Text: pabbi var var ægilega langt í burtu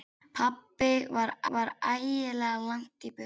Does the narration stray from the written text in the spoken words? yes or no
no